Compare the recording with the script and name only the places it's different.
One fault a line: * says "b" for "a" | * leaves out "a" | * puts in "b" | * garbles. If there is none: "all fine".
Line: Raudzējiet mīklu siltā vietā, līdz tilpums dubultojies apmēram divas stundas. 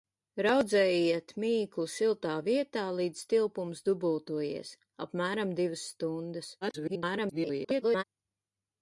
* garbles